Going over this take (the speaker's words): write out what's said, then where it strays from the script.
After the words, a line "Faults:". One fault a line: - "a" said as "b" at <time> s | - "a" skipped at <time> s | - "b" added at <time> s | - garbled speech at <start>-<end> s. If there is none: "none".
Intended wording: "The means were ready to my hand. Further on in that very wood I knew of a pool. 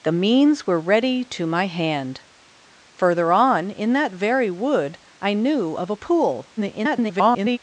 "The means were ready to my hand. Further on in that very wood I knew of a pool. [garbled]
Faults:
- garbled speech at 6.6-7.6 s